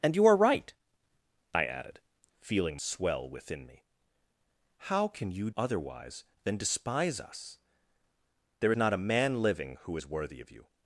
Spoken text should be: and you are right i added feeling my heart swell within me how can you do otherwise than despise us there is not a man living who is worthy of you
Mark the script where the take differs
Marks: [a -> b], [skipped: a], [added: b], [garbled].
and you are right i added feeling [skipped: my heart] swell within me how can you [skipped: do] otherwise than despise us there [skipped: is] not a man living who is worthy of you